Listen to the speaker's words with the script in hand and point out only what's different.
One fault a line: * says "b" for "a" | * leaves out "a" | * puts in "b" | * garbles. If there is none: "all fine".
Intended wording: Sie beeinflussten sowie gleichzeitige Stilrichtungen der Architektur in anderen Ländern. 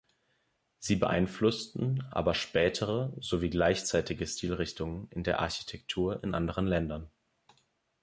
* puts in "aber spätere"
* puts in "in"